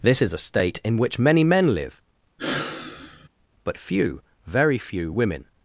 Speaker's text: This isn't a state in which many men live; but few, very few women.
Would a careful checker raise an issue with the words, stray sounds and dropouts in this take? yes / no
yes